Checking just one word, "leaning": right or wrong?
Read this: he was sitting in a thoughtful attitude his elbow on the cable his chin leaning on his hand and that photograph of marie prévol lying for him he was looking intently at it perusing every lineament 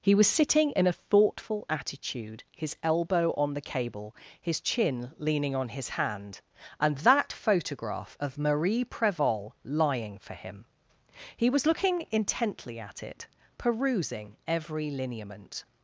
right